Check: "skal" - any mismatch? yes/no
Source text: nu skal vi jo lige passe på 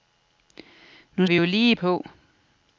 yes